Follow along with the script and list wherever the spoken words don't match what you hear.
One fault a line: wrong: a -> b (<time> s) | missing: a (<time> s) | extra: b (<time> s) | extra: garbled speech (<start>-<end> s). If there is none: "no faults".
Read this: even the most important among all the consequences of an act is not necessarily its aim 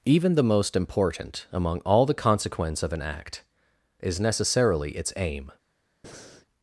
wrong: consequences -> consequence (2.1 s)
missing: not (4.2 s)